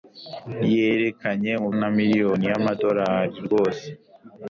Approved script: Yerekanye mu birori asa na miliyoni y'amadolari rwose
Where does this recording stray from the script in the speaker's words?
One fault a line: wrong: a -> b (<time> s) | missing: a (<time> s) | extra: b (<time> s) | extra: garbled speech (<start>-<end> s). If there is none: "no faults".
missing: birori asa (1.7 s)